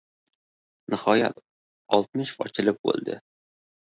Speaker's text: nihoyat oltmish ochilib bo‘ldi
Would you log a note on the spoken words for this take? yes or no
no